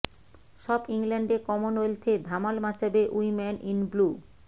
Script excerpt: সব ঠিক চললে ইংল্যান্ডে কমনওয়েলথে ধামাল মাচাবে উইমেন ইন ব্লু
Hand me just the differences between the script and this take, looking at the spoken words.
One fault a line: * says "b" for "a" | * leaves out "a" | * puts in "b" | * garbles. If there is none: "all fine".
* leaves out "ঠিক চললে"